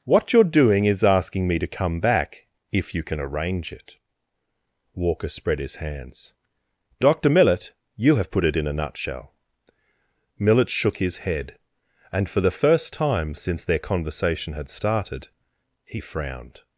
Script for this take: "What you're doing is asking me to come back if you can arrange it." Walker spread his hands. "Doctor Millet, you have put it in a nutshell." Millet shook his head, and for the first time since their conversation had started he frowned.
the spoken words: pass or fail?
pass